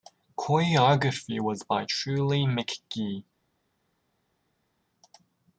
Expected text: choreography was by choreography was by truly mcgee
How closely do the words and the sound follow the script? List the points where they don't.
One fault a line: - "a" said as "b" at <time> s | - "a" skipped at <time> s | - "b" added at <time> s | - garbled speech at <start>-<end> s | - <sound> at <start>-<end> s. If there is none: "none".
- "choreography was by" skipped at 1.9 s